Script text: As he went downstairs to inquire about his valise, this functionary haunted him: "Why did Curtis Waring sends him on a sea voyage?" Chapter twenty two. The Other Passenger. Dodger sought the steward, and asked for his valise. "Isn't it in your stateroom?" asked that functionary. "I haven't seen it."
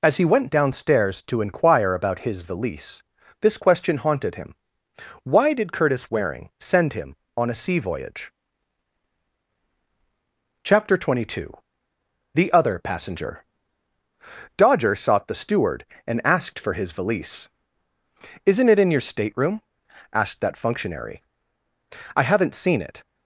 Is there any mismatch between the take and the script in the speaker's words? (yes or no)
yes